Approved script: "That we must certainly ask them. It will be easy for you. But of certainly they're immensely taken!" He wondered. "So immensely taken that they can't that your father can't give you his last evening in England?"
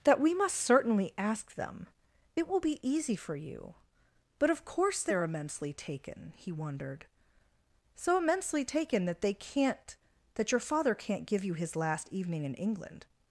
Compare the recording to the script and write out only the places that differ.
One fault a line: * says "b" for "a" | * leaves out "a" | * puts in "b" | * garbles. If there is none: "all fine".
* says "course" for "certainly"